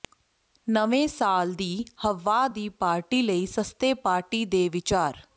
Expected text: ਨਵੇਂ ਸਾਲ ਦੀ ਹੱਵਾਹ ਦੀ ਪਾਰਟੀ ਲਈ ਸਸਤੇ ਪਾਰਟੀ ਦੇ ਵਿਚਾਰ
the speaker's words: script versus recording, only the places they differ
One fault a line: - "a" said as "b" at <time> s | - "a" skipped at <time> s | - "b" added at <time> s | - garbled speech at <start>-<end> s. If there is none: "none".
none